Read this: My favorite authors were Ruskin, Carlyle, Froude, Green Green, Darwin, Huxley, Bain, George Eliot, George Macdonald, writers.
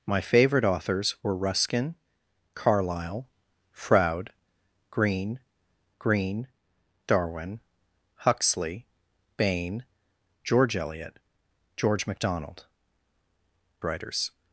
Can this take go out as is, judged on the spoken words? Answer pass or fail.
pass